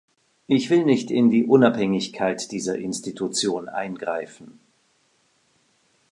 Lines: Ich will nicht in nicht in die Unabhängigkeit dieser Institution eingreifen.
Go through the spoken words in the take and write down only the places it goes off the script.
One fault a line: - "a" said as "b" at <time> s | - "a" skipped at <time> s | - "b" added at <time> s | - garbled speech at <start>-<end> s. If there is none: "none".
- "nicht in" skipped at 1.3 s